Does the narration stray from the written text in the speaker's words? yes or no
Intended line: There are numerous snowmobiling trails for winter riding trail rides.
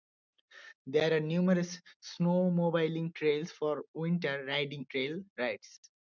no